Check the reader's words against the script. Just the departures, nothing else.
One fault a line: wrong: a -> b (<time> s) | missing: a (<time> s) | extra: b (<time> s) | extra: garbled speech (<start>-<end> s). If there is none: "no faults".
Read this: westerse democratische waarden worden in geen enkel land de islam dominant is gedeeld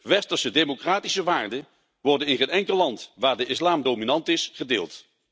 extra: waar (3.1 s)